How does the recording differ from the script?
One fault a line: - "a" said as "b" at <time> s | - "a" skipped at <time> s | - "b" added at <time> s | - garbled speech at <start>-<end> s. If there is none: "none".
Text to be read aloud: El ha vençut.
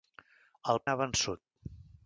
none